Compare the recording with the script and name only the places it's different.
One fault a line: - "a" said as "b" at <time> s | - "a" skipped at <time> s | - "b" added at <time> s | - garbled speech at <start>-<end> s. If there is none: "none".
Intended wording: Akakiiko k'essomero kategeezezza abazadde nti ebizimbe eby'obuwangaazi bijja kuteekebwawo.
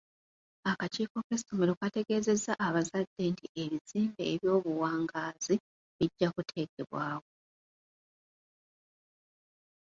none